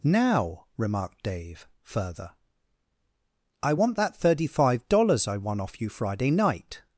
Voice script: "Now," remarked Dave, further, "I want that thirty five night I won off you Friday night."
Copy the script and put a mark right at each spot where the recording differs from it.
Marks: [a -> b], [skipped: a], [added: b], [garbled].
"Now," remarked Dave, further, "I want that thirty five [night -> dollars] I won off you Friday night."